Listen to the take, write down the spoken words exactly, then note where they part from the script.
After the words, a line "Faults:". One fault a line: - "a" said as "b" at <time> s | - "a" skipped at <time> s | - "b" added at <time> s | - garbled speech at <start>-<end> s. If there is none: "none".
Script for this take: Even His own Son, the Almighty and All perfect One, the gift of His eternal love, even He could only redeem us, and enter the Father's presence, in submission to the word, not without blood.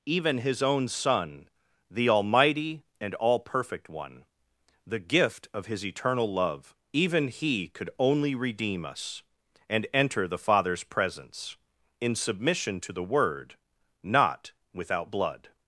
Even His own Son, the Almighty and All perfect One, the gift of His eternal love, even He could only redeem us, and enter the Father's presence, in submission to the word, not without blood.
Faults:
none